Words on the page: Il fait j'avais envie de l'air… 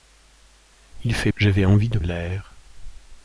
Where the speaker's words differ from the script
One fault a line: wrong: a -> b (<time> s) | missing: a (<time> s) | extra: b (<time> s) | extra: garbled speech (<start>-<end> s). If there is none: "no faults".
no faults